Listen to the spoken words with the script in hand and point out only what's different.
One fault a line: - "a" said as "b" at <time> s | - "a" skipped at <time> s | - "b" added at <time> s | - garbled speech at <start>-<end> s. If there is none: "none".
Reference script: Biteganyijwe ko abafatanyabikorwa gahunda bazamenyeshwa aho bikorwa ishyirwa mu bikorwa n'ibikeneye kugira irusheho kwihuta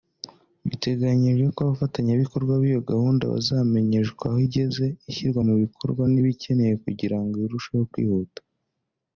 - "b'iyo" added at 2.6 s
- "bikorwa" said as "igeze" at 4.4 s
- "ngo" added at 7.2 s